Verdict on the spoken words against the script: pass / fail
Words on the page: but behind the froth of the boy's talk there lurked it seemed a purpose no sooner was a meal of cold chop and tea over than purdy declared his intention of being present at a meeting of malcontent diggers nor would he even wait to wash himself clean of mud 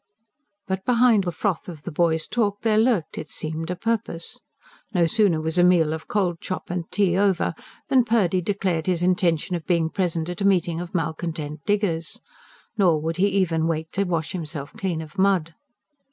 pass